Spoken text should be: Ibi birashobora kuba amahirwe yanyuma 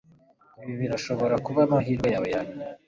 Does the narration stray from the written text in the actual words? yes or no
yes